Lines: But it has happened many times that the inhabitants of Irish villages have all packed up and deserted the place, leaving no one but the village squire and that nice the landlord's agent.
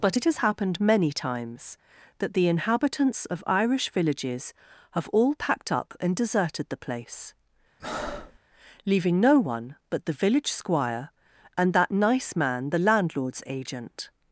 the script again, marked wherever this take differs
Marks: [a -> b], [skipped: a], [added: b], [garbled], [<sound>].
But it has happened many times that the inhabitants of Irish villages have all packed up and deserted the place, [breath] leaving no one but the village squire and that nice [added: man] the landlord's agent.